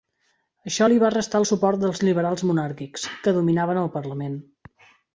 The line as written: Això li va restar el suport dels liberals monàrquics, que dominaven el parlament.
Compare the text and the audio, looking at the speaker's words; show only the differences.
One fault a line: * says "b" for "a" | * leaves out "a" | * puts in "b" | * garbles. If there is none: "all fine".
all fine